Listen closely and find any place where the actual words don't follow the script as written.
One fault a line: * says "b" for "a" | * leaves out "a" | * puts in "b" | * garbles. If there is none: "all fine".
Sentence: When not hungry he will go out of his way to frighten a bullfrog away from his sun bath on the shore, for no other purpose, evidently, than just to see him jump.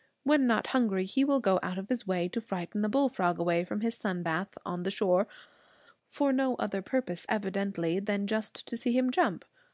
all fine